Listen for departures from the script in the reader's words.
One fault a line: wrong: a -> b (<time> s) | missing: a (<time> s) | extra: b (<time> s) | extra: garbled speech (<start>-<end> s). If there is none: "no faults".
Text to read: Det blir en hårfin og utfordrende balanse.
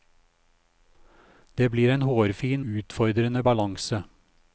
missing: og (2.6 s)